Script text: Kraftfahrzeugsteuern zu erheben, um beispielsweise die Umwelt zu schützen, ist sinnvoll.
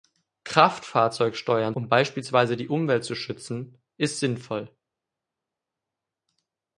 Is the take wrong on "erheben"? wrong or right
wrong